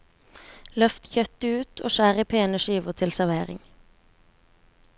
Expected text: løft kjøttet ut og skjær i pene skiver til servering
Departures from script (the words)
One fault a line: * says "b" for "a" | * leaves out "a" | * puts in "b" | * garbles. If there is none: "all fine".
all fine